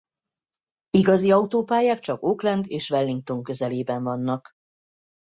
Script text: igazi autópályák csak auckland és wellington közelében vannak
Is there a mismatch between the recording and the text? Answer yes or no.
no